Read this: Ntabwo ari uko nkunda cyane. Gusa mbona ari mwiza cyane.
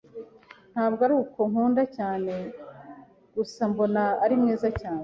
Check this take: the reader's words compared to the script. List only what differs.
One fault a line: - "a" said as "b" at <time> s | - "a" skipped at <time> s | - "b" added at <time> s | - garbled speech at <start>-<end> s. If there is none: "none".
none